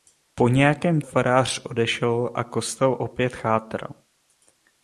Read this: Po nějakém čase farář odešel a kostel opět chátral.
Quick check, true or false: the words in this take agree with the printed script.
false